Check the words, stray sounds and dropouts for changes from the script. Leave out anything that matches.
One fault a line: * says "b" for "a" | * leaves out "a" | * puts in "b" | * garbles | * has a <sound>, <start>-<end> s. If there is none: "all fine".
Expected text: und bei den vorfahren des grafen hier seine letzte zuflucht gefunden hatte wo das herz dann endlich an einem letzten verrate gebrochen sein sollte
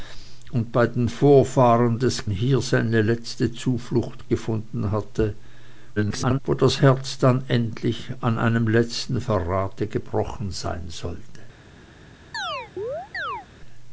* leaves out "grafen"
* garbles
* has a chirp, 12.3-13.5 s